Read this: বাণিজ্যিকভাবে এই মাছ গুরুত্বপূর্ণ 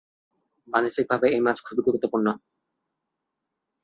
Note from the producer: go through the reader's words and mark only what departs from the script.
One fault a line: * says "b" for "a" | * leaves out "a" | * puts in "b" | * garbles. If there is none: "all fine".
* puts in "খুবই"